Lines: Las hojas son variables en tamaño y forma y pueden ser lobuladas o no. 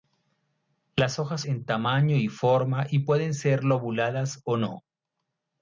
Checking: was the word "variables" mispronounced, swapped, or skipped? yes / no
yes